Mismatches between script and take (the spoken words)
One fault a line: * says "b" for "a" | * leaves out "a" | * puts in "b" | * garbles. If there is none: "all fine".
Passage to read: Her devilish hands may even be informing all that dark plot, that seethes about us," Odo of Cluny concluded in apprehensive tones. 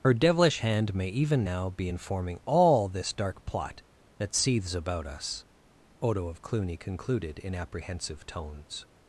* says "hand" for "hands"
* puts in "now"
* says "this" for "that"